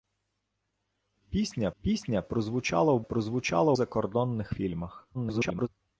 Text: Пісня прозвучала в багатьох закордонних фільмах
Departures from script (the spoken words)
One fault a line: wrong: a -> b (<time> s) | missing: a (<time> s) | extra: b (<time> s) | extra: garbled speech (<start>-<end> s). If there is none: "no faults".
extra: пісня (1.8 s)
wrong: багатьох -> прозвучала (3.0 s)
extra: garbled speech (5.1-5.7 s)